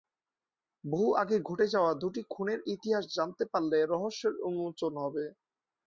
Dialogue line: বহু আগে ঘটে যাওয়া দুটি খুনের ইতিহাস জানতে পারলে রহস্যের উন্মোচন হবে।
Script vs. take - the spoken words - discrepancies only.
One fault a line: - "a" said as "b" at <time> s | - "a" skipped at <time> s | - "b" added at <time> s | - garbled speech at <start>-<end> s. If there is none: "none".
none